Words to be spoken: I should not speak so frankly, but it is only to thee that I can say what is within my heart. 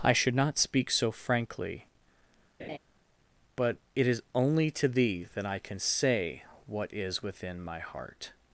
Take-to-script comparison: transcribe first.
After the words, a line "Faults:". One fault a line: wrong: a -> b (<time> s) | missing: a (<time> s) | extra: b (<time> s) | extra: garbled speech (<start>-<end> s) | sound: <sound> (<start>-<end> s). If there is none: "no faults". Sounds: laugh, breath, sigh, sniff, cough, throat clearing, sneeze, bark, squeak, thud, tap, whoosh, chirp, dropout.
I should not speak so frankly, but it is only to thee that I can say what is within my heart.
Faults:
sound: laugh (2.6-2.8 s)